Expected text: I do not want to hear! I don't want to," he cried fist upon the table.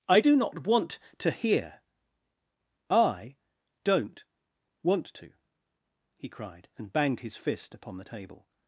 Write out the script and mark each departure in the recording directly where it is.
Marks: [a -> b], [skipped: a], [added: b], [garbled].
I do not want to hear! I don't want to," he cried [added: and banged his] fist upon the table.